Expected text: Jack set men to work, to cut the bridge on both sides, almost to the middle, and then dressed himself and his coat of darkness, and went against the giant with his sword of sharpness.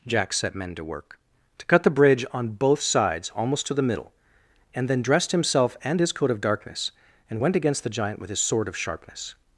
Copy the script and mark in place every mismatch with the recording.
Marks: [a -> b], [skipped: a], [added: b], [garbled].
Jack set men to work, to cut the bridge on both sides, almost to the middle, and then dressed himself and his coat of darkness, and went against the giant with his sword of sharpness.